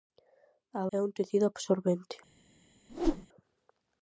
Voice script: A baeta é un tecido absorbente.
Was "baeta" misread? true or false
true